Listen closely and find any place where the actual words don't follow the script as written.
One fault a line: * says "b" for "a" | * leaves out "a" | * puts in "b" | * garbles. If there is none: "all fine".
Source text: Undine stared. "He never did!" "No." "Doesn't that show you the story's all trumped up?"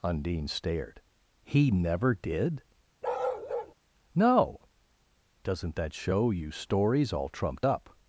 * leaves out "the"